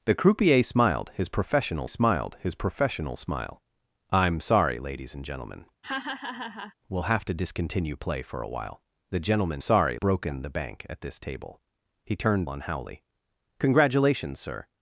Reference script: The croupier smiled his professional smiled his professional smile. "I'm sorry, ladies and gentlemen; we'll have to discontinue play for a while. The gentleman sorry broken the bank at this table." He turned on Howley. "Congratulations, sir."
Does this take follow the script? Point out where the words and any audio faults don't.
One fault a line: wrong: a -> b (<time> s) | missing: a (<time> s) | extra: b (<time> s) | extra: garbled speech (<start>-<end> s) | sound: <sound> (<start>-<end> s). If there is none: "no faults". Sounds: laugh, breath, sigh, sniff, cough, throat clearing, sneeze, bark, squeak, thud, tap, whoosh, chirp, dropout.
sound: laugh (5.8-6.7 s)